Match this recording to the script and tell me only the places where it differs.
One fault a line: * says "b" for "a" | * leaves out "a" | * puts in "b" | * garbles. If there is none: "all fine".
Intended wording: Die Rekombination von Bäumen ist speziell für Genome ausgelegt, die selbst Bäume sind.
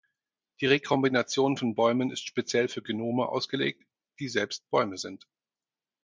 all fine